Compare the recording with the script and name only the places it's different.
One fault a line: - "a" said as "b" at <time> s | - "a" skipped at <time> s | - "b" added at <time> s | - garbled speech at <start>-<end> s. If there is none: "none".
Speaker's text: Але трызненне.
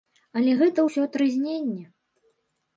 - "гэта ўсё" added at 0.6 s